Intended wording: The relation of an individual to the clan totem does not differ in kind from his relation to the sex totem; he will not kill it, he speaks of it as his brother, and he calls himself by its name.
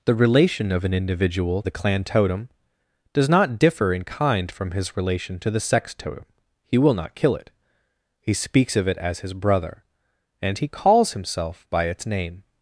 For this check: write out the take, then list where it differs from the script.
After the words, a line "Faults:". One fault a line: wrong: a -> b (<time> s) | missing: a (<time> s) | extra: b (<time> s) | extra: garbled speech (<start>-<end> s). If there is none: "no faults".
The relation of an individual the clan totem does not differ in kind from his relation to the sex totem; he will not kill it, he speaks of it as his brother, and he calls himself by its name.
Faults:
missing: to (1.6 s)